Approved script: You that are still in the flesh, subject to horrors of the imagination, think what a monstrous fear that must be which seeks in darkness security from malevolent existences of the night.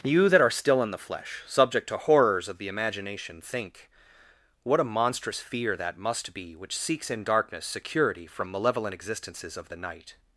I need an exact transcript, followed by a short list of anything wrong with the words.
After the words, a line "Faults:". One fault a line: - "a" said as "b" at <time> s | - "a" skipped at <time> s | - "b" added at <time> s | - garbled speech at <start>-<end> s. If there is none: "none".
You that are still in the flesh, subject to horrors of the imagination, think what a monstrous fear that must be which seeks in darkness security from malevolent existences of the night.
Faults:
none